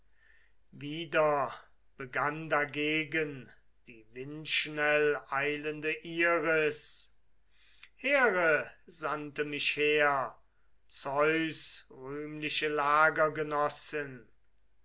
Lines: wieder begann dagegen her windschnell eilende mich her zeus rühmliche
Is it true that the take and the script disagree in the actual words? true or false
true